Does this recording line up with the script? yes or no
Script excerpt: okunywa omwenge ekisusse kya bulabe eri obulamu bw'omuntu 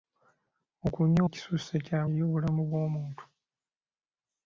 no